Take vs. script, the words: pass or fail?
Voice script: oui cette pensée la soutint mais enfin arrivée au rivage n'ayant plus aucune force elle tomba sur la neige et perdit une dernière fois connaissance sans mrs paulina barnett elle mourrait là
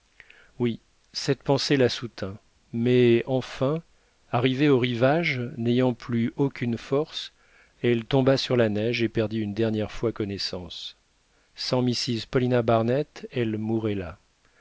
pass